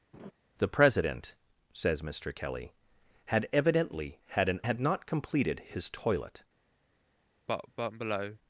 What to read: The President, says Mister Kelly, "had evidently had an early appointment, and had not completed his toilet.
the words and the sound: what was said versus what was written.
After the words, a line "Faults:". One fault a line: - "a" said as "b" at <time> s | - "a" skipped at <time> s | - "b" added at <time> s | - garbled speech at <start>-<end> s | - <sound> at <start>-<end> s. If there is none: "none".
The President, says Mister Kelly, "had evidently had an had not completed his toilet.
Faults:
- laugh at 0.1-0.3 s
- "early appointment and" skipped at 4.6 s
- cough at 7.5-8.4 s